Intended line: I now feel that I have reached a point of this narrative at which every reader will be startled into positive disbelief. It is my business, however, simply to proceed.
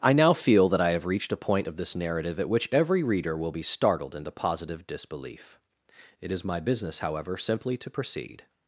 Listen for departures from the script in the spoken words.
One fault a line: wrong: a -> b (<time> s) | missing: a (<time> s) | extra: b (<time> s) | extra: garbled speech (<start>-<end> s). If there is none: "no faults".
no faults